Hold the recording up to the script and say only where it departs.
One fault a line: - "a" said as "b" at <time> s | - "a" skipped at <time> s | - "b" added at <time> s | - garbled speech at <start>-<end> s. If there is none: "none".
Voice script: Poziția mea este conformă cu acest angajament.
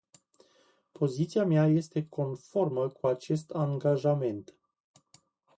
none